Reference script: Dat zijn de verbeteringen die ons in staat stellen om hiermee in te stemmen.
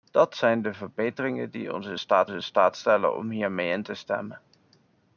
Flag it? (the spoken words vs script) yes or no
yes